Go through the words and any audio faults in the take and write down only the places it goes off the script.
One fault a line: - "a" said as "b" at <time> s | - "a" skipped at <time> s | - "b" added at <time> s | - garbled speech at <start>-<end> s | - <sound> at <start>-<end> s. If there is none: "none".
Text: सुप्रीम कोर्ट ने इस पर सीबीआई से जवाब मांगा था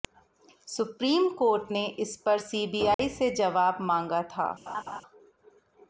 - dropout at 2.9-3.0 s
- laugh at 4.7-5.0 s